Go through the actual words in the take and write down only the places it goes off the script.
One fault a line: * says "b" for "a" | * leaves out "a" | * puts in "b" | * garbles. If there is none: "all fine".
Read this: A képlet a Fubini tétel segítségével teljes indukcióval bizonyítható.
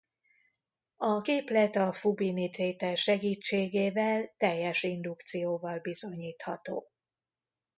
all fine